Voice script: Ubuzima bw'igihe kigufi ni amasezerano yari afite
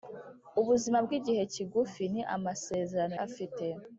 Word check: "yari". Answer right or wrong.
wrong